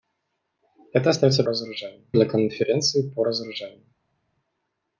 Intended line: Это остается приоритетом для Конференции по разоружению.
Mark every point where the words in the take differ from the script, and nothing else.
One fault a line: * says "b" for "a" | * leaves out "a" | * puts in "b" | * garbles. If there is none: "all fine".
* says "разоружению" for "приоритетом"